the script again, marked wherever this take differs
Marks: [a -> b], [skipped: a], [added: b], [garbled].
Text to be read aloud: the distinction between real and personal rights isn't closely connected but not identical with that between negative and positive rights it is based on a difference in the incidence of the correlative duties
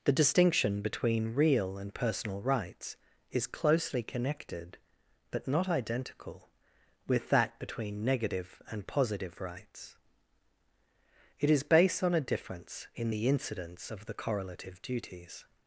the distinction between real and personal rights [isn't -> is] closely connected but not identical with that between negative and positive rights it is based on a difference in the incidence of the correlative duties